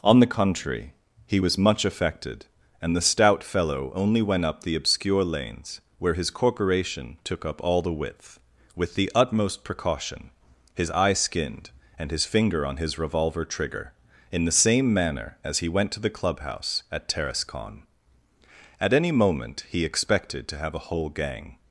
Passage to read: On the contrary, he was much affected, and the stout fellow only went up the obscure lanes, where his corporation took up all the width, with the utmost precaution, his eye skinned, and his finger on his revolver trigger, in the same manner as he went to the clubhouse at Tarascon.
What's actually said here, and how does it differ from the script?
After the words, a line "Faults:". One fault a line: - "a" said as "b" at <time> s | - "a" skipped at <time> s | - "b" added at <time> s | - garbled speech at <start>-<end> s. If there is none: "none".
On the contrary, he was much affected, and the stout fellow only went up the obscure lanes, where his corporation took up all the width, with the utmost precaution, his eye skinned, and his finger on his revolver trigger, in the same manner as he went to the clubhouse at Tarascon. At any moment he expected to have a whole gang
Faults:
- "At any moment he expected to have a whole gang" added at 18.8 s